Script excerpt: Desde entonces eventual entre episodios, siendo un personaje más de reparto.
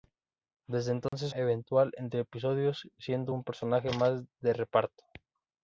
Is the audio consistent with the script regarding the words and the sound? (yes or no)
no